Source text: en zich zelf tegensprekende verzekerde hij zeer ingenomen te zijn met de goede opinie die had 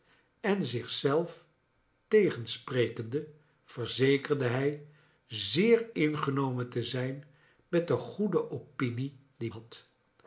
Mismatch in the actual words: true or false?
false